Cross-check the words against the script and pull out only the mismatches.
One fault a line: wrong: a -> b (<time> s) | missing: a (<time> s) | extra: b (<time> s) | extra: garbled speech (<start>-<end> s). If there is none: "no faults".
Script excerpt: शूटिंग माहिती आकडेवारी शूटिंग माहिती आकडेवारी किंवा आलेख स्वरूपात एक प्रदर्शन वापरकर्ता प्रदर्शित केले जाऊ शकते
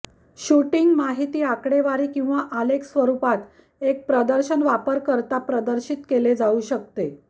missing: शूटिंग माहिती आकडेवारी (2.1 s)